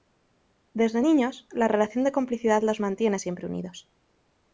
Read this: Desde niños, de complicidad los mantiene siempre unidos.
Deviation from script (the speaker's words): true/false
true